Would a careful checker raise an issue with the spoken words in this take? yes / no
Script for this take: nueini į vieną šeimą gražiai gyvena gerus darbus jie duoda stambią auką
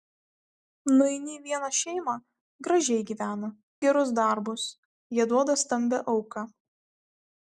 no